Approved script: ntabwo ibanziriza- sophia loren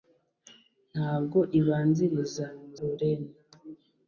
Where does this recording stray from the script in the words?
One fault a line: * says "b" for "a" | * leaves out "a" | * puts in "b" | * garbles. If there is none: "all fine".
* leaves out "sophia"